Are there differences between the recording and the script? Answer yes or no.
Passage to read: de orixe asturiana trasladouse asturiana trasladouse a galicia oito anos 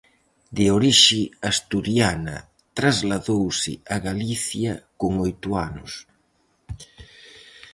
yes